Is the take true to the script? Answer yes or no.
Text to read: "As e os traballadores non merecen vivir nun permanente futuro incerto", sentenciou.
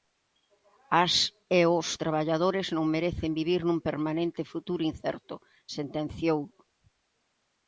yes